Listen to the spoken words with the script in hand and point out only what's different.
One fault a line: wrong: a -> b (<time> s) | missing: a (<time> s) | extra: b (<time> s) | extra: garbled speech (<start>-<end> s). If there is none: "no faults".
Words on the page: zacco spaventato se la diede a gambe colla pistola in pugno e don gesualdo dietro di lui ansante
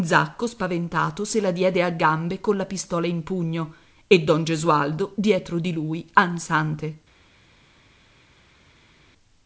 no faults